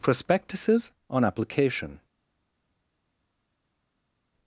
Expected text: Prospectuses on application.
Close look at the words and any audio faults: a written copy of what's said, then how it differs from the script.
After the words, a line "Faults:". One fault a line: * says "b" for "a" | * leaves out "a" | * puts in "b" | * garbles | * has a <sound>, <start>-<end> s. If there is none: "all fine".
Prospectuses on application.
Faults:
all fine